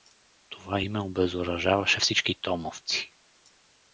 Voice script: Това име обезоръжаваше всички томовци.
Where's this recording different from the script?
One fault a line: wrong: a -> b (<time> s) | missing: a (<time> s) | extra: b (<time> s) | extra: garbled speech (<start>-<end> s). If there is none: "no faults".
no faults